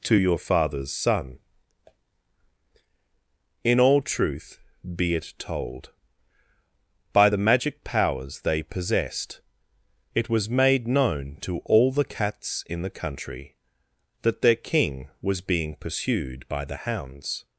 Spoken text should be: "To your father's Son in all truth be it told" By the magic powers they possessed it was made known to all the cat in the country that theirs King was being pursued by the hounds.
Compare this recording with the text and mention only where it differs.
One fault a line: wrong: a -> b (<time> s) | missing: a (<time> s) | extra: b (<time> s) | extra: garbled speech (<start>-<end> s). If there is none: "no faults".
wrong: cat -> cats (12.0 s)
wrong: theirs -> their (14.4 s)